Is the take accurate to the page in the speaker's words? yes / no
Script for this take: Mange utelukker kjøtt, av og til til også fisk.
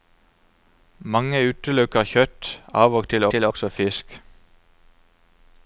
yes